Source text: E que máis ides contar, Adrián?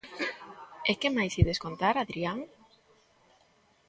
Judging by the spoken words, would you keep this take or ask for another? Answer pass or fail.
pass